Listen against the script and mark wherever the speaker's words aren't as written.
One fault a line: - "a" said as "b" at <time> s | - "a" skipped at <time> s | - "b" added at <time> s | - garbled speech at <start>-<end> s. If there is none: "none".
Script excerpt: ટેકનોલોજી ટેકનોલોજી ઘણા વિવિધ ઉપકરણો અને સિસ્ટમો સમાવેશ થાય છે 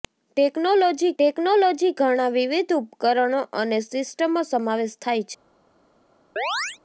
none